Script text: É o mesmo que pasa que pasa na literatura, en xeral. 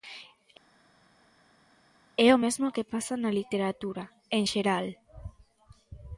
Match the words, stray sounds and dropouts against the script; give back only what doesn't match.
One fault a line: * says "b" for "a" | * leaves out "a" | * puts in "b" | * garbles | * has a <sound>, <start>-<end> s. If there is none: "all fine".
* leaves out "que pasa"